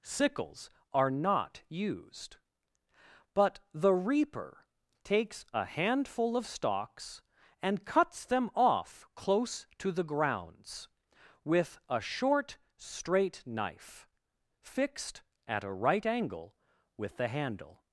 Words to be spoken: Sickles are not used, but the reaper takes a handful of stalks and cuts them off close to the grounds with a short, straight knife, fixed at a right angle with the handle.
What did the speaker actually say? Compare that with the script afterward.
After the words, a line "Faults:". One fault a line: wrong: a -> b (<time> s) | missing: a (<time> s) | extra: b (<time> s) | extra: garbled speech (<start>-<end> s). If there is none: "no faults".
Sickles are not used, but the reaper takes a handful of stalks and cuts them off close to the grounds with a short, straight knife, fixed at a right angle with the handle.
Faults:
no faults